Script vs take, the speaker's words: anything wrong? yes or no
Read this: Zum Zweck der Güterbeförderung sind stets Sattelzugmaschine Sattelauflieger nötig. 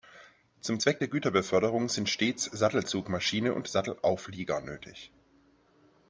yes